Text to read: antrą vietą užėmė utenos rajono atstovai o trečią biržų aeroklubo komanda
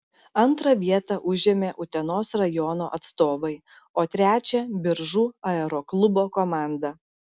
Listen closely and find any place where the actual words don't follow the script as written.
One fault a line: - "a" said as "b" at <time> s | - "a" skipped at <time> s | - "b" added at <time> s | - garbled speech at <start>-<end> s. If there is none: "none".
none